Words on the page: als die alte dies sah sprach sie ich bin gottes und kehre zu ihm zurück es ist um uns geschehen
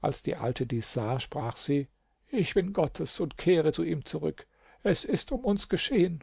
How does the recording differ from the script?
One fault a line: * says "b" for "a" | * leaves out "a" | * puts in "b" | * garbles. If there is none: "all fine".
all fine